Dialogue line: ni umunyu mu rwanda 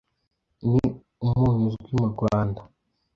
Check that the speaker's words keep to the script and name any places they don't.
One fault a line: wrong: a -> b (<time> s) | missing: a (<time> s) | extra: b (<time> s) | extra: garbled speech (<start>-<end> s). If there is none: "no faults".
extra: uzwi (1.7 s)